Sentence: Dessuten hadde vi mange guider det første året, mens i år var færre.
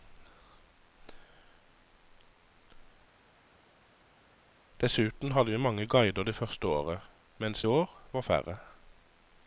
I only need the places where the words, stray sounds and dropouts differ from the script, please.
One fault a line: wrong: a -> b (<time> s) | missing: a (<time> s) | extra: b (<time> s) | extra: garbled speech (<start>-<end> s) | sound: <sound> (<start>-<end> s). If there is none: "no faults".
no faults